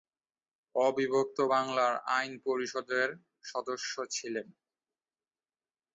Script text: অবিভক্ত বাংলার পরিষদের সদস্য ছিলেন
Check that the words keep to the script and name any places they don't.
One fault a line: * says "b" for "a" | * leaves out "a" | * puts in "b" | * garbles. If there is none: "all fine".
* puts in "আইন"